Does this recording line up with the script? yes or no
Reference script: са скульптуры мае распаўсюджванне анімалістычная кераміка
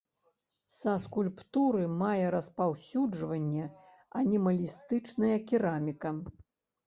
yes